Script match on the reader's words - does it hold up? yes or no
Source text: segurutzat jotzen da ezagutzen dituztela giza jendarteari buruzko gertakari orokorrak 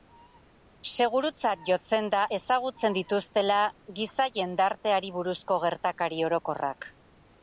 yes